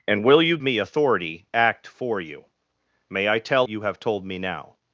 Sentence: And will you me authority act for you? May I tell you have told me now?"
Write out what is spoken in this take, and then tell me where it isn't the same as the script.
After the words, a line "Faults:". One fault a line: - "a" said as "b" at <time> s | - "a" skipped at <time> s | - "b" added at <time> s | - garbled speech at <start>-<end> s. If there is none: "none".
And will you me authority act for you? May I tell you have told me now?"
Faults:
none